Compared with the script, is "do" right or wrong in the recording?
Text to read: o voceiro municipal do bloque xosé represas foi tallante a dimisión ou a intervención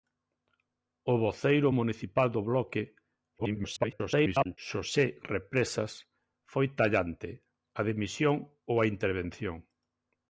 right